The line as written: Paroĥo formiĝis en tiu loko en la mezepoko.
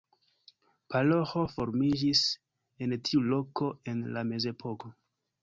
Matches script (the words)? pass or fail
pass